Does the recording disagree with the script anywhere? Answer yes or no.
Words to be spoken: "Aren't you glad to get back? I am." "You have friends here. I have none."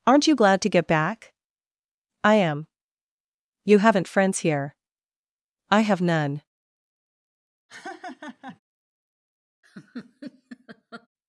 yes